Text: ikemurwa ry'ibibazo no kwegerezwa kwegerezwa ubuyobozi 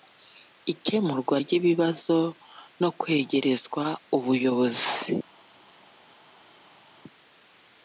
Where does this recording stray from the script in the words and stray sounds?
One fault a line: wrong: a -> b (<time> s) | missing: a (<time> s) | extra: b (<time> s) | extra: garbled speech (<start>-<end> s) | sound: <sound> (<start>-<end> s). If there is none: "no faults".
missing: kwegerezwa (3.8 s)